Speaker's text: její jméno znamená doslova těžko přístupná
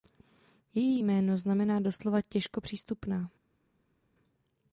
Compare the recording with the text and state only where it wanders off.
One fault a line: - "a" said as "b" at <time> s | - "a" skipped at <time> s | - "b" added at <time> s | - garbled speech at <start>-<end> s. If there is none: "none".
none